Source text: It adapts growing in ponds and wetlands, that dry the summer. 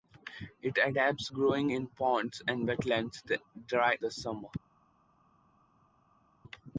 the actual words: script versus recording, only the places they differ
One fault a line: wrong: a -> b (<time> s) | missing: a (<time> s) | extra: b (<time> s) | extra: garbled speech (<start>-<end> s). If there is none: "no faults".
no faults